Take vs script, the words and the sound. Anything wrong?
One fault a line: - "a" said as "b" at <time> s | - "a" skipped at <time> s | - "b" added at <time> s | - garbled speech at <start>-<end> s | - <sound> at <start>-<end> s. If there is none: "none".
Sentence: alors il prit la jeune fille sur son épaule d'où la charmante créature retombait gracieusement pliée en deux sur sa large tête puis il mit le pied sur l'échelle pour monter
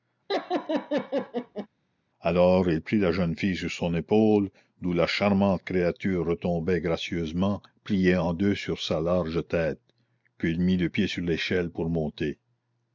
- laugh at 0.3-1.7 s